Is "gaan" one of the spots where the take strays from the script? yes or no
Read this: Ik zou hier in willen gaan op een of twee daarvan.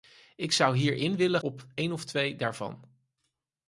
yes